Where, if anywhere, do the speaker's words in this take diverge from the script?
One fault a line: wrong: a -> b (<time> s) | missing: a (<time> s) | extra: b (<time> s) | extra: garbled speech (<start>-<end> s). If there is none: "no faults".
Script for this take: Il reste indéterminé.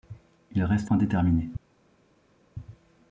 no faults